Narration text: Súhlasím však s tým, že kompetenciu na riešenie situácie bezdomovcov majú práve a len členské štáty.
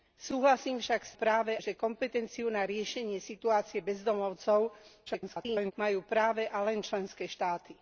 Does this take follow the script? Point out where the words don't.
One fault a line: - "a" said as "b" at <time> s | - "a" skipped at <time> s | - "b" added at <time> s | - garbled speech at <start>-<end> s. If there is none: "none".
- "tým" said as "práve" at 1.1 s
- garbled speech at 5.1-5.7 s